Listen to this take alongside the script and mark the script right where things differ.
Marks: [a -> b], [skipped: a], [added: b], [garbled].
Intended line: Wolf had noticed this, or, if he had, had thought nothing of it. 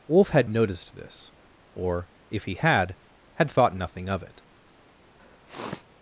Wolf had noticed this, or, if he had, had thought nothing of it.